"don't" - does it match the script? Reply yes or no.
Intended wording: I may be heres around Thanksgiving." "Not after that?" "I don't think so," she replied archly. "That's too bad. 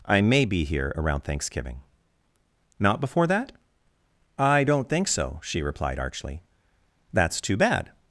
yes